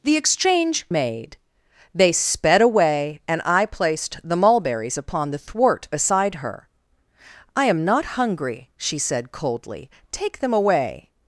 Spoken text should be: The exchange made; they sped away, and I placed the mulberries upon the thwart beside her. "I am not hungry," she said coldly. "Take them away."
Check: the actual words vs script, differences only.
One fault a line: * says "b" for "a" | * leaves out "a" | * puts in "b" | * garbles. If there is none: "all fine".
all fine